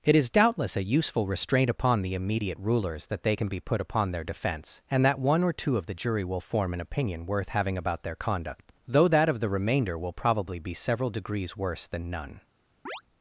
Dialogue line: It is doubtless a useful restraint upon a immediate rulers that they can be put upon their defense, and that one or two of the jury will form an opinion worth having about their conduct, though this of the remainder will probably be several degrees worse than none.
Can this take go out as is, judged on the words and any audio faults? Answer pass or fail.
fail